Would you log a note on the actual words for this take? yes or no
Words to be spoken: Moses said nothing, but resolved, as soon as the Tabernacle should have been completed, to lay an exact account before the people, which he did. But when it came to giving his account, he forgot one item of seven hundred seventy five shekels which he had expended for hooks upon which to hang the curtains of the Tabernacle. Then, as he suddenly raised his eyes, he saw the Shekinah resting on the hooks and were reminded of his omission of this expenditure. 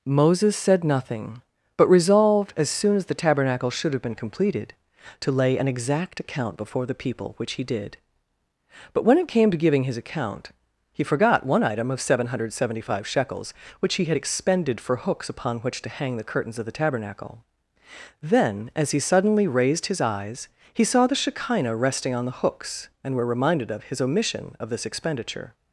no